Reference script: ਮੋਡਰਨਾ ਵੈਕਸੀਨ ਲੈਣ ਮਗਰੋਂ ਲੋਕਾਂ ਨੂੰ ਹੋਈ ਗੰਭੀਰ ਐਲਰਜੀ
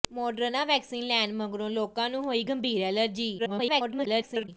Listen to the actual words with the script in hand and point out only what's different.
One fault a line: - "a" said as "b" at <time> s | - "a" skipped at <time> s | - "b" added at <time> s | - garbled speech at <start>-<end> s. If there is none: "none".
- garbled speech at 3.4-4.5 s